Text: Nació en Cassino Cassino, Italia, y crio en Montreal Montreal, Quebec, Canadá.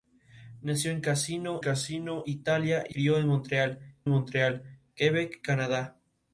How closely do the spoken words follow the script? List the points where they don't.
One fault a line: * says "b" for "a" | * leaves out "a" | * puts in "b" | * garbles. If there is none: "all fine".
all fine